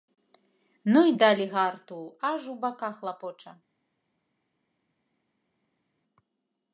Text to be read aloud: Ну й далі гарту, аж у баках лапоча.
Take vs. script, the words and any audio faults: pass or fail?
pass